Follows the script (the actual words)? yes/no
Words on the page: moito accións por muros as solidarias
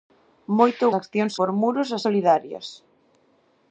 yes